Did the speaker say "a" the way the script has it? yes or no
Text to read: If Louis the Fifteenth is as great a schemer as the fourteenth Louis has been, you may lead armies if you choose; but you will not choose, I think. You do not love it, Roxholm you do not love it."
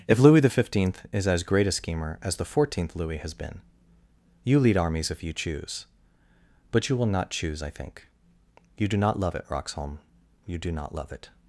yes